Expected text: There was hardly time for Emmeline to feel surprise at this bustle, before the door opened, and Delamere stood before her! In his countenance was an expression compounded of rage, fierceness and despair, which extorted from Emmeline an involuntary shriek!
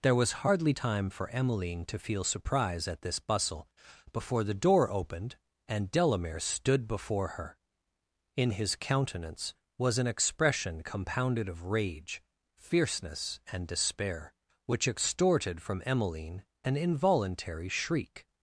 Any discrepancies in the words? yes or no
no